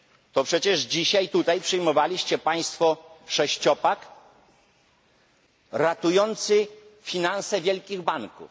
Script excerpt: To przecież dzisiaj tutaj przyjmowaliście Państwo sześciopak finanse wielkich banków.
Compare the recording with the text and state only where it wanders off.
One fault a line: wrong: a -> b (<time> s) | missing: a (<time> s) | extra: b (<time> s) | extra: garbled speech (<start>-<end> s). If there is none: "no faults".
extra: ratujący (5.7 s)